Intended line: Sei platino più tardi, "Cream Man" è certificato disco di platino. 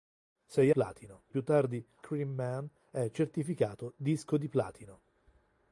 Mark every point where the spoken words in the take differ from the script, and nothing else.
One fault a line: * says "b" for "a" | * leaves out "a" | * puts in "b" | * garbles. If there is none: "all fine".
all fine